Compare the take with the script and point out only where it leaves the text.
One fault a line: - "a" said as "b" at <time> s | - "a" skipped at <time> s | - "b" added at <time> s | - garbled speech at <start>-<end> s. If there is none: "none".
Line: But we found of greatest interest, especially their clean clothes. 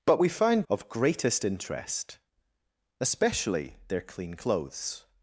none